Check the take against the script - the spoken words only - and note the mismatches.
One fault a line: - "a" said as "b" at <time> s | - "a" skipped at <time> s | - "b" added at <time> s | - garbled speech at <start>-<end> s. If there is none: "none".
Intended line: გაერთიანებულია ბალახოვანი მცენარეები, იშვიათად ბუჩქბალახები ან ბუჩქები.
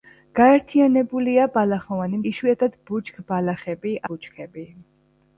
- "მცენარეები" skipped at 2.2 s
- "ან" skipped at 4.0 s